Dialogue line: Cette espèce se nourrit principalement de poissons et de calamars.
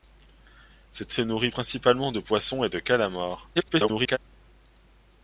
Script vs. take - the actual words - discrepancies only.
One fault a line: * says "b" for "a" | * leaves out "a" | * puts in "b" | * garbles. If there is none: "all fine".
* leaves out "espèce"
* garbles